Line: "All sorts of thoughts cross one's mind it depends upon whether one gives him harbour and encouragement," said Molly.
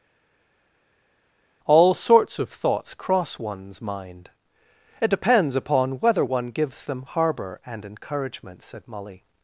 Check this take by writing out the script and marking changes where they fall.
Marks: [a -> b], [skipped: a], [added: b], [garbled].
"All sorts of thoughts cross one's mind it depends upon whether one gives [him -> them] harbour and encouragement," said Molly.